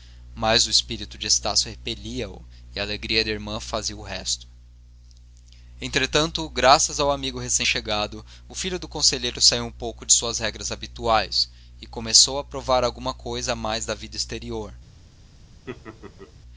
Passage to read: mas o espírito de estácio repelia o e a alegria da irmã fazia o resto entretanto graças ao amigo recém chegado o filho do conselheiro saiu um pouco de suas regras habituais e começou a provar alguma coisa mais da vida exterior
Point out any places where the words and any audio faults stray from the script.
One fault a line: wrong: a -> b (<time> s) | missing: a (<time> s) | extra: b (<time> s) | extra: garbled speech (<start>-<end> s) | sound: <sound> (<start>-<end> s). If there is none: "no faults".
sound: laugh (15.7-16.3 s)